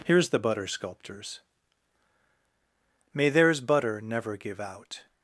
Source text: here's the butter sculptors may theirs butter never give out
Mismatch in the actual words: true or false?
false